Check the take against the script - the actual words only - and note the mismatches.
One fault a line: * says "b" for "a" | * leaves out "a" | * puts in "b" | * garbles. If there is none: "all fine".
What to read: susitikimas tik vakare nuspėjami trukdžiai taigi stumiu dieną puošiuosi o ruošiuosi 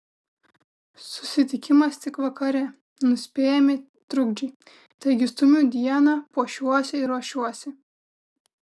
* says "ir" for "o"